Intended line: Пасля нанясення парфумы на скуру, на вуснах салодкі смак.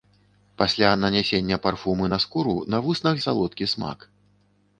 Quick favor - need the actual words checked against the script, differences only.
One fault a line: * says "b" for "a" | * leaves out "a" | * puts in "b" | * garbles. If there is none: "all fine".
all fine